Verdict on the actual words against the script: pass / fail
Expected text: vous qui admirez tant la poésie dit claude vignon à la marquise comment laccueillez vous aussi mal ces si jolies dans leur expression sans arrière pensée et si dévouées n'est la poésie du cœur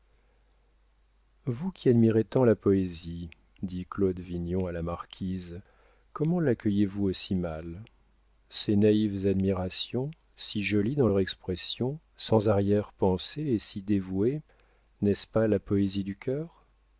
fail